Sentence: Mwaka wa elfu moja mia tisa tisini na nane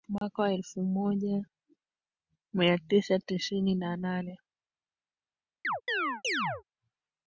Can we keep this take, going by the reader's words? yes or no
yes